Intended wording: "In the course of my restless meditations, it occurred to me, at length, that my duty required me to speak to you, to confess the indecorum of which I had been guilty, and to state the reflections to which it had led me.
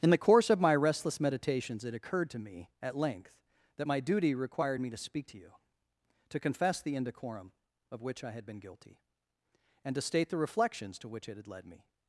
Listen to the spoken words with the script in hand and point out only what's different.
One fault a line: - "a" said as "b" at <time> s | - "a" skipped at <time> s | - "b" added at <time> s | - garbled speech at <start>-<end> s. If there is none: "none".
none